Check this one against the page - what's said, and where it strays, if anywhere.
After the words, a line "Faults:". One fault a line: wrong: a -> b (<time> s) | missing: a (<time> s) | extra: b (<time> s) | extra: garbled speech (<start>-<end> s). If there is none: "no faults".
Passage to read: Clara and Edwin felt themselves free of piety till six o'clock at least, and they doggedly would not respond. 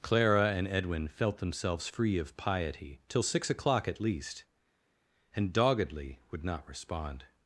Clara and Edwin felt themselves free of piety till six o'clock at least, and doggedly would not respond.
Faults:
missing: they (5.5 s)